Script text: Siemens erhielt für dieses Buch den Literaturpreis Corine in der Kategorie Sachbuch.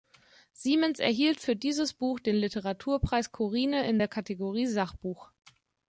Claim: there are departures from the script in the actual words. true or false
false